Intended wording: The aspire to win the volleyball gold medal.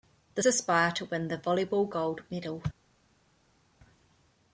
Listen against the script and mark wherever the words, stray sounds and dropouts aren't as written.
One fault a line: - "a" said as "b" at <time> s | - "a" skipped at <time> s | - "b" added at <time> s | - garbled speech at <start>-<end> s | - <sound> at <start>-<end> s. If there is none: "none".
none